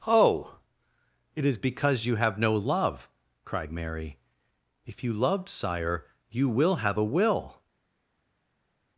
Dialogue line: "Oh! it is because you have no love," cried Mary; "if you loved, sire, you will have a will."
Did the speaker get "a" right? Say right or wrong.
right